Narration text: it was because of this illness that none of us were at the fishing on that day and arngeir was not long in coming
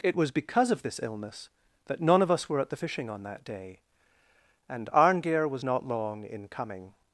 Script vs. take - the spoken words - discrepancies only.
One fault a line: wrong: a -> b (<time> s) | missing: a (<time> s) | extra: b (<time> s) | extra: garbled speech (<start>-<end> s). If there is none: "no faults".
no faults